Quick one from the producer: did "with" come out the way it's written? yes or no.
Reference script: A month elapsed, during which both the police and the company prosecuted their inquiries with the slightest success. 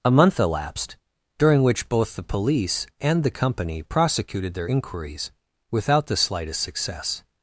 no